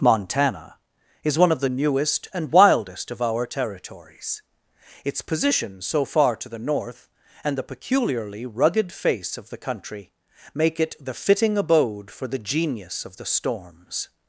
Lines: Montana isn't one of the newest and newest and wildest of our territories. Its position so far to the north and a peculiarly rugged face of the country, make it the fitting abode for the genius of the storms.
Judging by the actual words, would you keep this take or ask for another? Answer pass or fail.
fail